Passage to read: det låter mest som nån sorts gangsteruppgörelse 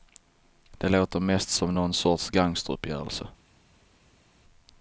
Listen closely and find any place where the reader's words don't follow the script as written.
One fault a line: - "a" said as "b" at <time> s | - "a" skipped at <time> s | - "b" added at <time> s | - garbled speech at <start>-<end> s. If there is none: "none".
none